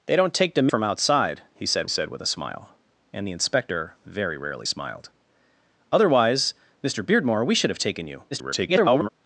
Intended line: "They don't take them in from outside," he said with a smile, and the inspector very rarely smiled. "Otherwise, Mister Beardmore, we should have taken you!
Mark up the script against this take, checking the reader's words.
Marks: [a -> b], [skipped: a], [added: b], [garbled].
"They don't take them [skipped: in] from outside," he said [added: said] with a smile, and the inspector very rarely smiled. "Otherwise, Mister Beardmore, we should have taken you! [garbled]